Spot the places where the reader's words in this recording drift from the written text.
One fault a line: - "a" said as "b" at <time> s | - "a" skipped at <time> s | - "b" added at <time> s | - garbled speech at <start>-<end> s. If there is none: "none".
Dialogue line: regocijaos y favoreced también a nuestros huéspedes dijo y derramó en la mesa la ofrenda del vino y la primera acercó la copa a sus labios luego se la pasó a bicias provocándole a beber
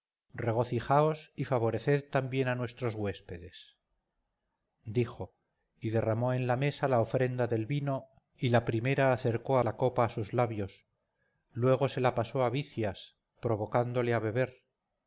none